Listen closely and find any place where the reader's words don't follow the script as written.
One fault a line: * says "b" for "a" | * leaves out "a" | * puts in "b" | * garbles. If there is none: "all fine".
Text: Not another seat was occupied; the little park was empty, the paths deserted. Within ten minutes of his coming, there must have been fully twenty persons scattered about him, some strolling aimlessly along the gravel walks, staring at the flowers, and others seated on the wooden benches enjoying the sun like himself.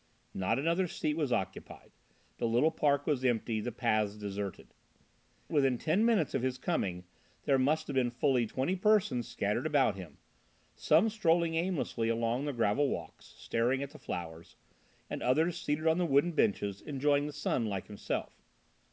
all fine